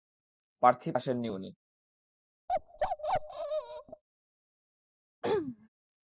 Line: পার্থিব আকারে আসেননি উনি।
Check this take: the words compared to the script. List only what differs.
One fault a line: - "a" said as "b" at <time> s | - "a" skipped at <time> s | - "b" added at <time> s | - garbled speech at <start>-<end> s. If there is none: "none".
- "আকারে" skipped at 0.9 s